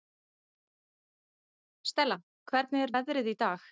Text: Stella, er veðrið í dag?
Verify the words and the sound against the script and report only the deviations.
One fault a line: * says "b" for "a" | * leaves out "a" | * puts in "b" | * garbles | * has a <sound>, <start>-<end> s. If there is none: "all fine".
* puts in "hvernig"